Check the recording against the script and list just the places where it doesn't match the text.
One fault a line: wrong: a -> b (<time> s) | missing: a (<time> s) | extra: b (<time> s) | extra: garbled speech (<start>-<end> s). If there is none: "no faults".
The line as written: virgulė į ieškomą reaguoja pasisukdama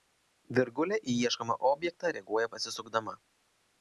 extra: objektą (1.7 s)